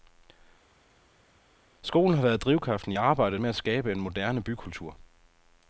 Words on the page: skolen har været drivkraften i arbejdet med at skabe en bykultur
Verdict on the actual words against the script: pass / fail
fail